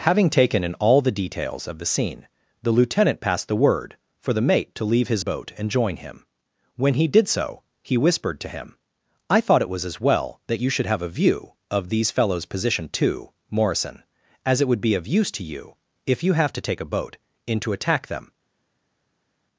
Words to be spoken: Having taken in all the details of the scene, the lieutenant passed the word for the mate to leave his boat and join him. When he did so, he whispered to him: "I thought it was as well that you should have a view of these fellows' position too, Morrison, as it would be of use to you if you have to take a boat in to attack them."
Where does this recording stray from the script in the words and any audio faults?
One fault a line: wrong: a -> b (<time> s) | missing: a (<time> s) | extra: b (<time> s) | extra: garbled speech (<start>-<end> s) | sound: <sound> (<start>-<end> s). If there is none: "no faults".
no faults